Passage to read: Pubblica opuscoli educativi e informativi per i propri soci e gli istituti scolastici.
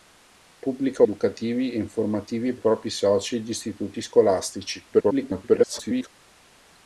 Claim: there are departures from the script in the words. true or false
true